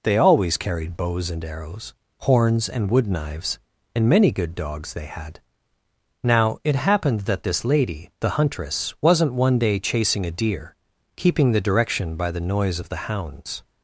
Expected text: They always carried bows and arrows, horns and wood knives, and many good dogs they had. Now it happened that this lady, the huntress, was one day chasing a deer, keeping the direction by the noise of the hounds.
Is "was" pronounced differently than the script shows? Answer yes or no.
yes